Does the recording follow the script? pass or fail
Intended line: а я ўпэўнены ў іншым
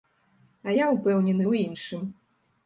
pass